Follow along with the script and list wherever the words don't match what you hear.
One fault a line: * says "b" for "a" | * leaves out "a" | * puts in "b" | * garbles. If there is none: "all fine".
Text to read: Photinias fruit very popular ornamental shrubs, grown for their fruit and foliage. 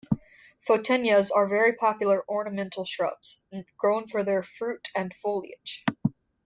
* says "are" for "fruit"